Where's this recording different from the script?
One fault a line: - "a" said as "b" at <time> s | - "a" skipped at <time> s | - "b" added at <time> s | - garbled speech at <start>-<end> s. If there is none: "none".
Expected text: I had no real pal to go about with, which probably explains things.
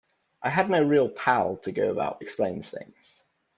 - "with which probably" skipped at 2.2 s